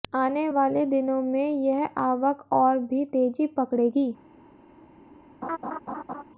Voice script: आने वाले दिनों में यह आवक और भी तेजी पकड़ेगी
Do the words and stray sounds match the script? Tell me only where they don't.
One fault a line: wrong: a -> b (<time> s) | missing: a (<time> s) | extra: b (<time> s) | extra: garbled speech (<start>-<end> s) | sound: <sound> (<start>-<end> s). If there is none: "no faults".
sound: laugh (5.4-6.2 s)